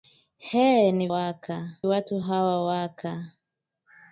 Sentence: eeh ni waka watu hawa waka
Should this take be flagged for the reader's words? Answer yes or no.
no